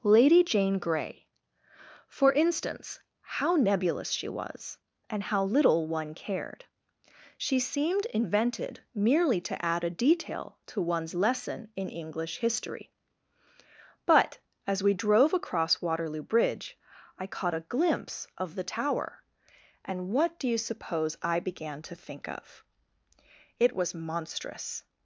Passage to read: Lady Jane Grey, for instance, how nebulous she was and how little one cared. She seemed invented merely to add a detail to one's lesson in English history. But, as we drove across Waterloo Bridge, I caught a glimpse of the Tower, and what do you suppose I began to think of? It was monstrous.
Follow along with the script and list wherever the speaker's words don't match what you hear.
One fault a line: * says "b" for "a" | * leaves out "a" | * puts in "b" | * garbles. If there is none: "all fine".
all fine